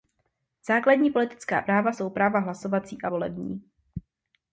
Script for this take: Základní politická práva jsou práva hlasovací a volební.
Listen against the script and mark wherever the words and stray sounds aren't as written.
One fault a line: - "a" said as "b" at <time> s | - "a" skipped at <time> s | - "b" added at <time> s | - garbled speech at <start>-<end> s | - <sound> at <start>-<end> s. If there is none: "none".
none